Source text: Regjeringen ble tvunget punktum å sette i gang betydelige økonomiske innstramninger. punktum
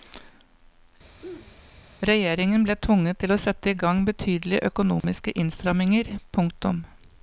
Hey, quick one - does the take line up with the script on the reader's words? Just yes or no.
no